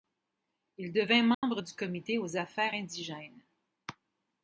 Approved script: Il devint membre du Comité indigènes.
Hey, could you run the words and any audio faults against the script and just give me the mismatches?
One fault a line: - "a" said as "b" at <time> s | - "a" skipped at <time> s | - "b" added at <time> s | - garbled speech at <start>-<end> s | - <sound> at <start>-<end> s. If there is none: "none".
- dropout at 1.3-1.4 s
- "aux Affaires" added at 2.2 s